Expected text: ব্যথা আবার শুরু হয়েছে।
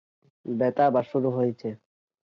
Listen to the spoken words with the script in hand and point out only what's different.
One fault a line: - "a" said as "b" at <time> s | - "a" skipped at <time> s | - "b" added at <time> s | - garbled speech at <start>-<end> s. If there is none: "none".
none